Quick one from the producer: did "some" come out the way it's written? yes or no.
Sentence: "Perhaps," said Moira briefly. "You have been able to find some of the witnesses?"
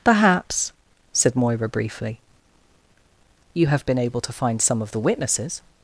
yes